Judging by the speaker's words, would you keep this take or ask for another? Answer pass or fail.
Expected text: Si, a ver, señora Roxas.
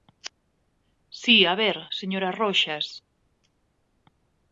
pass